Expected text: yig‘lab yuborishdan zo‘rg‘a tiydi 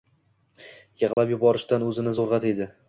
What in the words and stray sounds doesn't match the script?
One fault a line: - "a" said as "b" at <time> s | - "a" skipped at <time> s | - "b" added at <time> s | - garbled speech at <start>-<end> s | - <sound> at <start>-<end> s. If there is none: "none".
- dropout at 1.1-1.2 s
- "o‘zini" added at 1.9 s